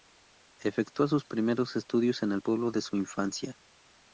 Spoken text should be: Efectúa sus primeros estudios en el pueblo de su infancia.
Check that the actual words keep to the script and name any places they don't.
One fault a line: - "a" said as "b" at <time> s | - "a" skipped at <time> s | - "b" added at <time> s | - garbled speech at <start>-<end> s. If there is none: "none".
none